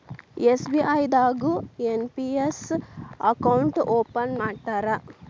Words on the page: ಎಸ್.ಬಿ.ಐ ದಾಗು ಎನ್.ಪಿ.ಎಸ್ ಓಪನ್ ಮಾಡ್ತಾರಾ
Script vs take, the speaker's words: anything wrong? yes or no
yes